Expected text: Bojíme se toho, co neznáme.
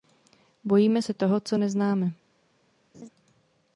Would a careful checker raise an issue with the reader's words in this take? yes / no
no